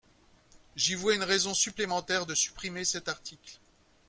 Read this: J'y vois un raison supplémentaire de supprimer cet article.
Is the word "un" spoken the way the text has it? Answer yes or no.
no